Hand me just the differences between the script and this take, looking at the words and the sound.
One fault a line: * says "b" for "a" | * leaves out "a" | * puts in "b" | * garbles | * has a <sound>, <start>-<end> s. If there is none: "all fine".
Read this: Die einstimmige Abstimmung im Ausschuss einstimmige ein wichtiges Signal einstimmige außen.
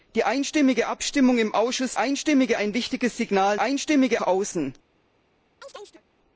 * has a chirp, 5.6-6.0 s